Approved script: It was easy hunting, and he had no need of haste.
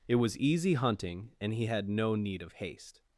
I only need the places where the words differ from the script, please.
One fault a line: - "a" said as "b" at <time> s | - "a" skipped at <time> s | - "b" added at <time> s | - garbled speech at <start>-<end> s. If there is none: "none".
none